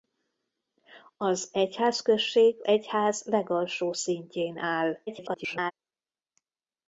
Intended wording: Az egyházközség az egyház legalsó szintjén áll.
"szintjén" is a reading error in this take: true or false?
false